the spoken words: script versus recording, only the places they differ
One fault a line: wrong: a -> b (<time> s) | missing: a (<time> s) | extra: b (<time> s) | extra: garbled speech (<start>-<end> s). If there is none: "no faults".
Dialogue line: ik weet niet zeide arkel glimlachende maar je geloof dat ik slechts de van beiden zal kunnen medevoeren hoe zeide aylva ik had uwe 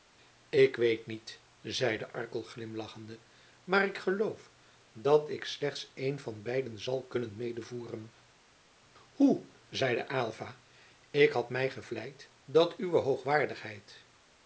wrong: je -> ik (3.9 s)
wrong: de -> een (6.0 s)
extra: mij gevleid dat (11.5 s)